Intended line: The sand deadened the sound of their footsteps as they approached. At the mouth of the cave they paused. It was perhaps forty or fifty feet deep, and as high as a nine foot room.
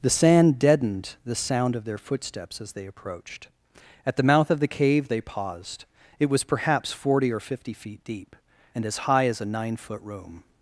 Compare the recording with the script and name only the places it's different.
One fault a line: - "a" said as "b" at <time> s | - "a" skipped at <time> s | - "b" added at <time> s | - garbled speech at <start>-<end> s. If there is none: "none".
none